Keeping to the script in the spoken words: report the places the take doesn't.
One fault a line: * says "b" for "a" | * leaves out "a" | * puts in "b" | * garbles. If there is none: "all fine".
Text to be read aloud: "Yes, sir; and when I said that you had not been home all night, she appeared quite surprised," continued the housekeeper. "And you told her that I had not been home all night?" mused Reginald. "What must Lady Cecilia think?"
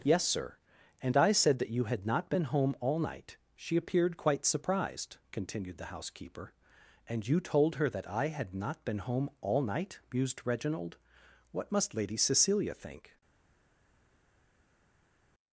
* leaves out "when"